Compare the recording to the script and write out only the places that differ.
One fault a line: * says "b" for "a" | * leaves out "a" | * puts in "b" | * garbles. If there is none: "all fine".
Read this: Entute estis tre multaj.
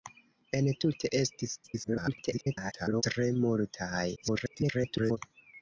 * garbles
* garbles